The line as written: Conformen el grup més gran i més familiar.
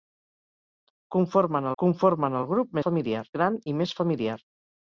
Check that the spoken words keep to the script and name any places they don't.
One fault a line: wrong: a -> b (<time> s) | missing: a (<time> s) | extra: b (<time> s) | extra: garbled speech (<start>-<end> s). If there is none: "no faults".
extra: conformen (1.8 s)
wrong: més -> familiar (2.9 s)